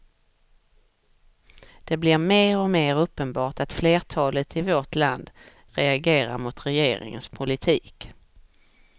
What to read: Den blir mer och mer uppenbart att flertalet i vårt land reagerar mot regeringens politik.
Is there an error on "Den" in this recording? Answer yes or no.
yes